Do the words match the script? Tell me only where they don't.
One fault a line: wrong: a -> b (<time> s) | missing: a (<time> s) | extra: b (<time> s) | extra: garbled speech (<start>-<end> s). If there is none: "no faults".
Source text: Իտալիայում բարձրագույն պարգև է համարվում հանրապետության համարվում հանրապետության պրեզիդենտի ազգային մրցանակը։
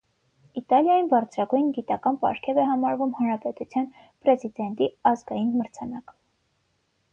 extra: գիտական (1.8 s)
missing: համարվում հանրապետության (3.9 s)